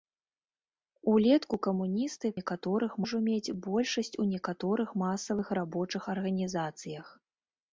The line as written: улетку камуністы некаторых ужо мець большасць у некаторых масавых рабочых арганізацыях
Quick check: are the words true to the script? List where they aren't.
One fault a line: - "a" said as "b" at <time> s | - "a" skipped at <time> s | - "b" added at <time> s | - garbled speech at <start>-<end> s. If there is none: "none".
none